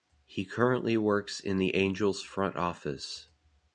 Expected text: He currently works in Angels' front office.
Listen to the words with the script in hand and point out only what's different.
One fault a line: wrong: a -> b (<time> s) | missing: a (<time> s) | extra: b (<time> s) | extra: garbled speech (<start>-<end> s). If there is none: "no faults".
extra: the (1.6 s)